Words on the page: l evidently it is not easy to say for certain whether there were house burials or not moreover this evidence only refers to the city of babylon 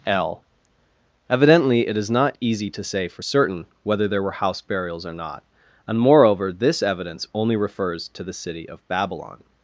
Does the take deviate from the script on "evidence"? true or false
false